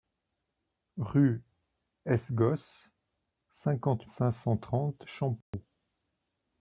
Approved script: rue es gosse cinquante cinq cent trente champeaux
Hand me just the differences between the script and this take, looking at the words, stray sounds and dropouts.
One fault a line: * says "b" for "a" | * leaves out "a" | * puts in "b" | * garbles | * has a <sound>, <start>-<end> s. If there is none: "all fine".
* has a dropout, 5.4-5.5 s